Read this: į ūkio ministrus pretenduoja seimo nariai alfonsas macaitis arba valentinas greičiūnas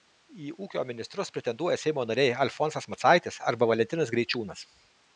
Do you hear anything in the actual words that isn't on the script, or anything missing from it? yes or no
no